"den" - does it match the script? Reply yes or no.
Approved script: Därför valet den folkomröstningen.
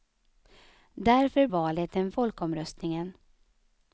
yes